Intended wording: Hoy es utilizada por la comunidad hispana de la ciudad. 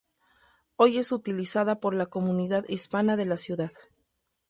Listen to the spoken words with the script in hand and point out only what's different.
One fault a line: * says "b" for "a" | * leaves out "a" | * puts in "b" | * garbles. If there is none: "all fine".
all fine